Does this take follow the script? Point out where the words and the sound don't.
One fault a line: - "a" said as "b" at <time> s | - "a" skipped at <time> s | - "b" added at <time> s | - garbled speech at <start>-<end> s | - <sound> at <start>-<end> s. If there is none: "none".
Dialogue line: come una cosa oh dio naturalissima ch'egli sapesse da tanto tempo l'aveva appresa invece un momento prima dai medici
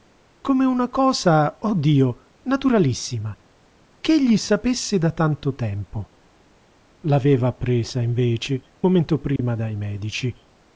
- "un" skipped at 8.6 s
- dropout at 9.4-9.4 s